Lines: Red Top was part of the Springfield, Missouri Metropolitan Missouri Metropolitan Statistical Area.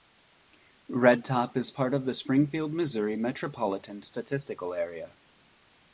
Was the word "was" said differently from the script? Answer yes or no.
yes